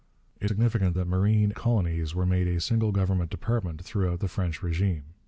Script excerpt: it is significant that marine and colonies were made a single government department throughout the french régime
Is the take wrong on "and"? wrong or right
wrong